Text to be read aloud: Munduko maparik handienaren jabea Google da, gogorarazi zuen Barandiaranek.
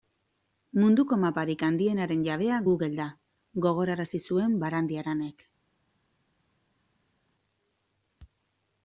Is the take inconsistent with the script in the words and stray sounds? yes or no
no